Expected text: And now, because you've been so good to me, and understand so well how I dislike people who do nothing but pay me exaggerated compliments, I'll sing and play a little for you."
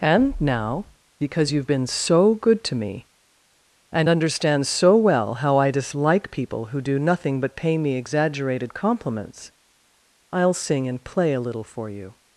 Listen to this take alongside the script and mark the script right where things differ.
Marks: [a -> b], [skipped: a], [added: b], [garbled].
And now, because you've been so good to me, and understand so well how I dislike people who do nothing but pay me exaggerated compliments, I'll sing and play a little for you."